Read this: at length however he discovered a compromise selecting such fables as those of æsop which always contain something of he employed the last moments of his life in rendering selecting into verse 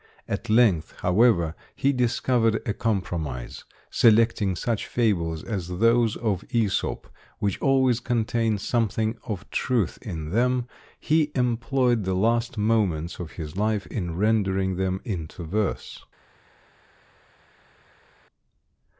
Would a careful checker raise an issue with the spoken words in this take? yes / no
yes